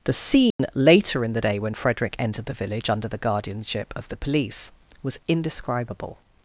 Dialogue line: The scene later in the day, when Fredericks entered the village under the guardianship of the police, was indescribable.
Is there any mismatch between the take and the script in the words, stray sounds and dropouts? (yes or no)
yes